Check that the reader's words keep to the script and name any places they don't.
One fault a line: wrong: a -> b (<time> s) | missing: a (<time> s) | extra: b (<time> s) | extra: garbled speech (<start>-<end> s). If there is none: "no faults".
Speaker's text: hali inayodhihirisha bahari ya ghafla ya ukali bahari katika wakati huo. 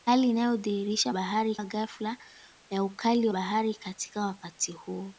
no faults